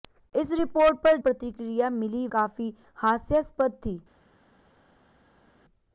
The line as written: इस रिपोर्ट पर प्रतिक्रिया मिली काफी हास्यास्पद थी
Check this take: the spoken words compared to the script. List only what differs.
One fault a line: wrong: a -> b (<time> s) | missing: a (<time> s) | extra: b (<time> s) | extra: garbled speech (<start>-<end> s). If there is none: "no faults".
no faults